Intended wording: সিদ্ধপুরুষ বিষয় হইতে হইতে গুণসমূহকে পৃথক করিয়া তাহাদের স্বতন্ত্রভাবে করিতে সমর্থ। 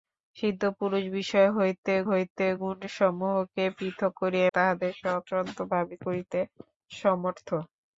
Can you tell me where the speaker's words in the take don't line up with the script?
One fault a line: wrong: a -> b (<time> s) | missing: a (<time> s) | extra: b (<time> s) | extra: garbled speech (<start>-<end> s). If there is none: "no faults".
no faults